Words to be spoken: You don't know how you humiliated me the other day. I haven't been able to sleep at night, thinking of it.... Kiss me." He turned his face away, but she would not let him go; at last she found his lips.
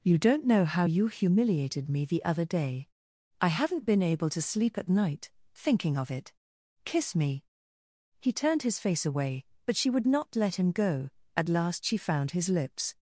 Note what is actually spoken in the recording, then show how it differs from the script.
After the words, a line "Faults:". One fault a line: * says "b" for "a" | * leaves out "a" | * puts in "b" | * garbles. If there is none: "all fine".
You don't know how you humiliated me the other day. I haven't been able to sleep at night, thinking of it.... Kiss me." He turned his face away, but she would not let him go; at last she found his lips.
Faults:
all fine